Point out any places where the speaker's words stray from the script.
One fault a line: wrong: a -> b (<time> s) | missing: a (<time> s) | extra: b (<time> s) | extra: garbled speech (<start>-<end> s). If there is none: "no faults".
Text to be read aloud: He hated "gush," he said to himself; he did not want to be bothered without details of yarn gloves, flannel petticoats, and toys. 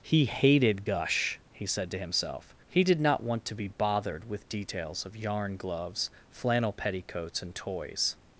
wrong: without -> with (4.3 s)